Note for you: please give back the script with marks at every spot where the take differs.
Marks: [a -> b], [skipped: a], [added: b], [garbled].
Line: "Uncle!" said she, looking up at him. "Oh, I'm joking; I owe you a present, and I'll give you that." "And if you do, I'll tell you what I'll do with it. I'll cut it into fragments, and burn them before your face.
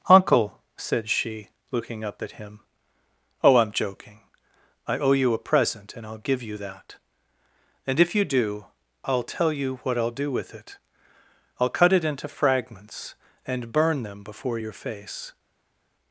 "Uncle!" said she, looking up at him. "Oh, I'm joking; I owe you a present, and I'll give you that." "And if you do, I'll tell you what I'll do with it. I'll cut it into fragments, and burn them before your face.